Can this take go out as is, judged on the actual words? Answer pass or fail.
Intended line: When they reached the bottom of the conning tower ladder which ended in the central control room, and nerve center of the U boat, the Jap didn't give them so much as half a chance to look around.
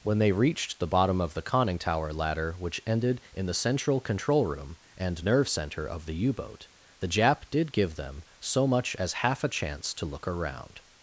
fail